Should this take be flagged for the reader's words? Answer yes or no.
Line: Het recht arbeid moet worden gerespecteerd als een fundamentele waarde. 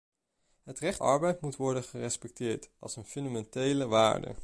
no